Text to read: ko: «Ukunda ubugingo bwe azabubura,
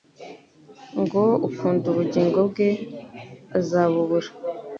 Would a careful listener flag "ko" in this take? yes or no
yes